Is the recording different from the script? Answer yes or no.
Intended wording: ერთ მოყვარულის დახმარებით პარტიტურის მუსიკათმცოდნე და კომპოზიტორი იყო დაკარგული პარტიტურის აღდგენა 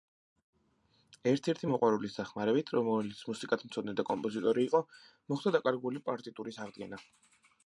yes